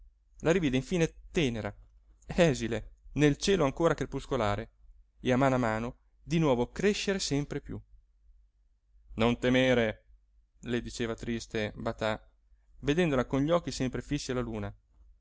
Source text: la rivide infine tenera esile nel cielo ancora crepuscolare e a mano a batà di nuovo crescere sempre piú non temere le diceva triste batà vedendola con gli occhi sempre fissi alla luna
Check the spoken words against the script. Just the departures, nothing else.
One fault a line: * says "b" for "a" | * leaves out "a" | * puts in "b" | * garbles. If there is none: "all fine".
* says "mano" for "batà"